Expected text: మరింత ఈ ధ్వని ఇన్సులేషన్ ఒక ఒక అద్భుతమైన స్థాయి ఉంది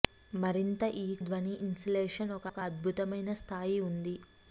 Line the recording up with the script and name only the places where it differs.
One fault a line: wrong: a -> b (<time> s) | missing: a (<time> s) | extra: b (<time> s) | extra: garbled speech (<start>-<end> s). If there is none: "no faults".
no faults